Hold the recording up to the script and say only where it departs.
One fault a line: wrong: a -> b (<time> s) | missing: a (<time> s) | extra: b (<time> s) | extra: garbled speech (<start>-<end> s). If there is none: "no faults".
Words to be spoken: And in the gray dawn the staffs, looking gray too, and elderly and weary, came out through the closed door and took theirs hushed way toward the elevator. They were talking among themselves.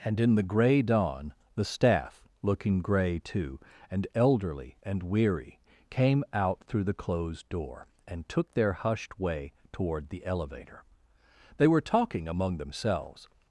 wrong: staffs -> staff (1.6 s)
wrong: theirs -> their (8.5 s)